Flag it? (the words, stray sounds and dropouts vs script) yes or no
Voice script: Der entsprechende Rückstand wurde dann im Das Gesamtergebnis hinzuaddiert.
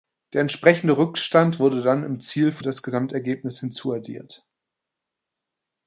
yes